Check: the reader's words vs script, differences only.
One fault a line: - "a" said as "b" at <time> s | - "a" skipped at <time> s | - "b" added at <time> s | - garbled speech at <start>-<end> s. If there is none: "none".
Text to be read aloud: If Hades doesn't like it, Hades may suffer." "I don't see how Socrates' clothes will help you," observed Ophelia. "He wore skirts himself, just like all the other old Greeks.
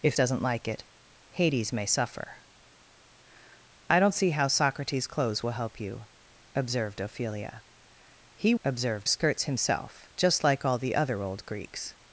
- "Hades" skipped at 0.2 s
- "wore" said as "observed" at 8.6 s